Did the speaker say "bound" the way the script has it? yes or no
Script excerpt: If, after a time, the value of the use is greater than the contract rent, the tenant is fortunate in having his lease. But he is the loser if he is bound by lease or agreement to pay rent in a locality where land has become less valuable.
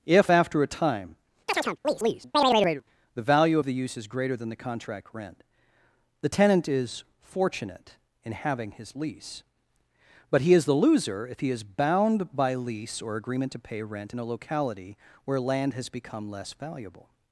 yes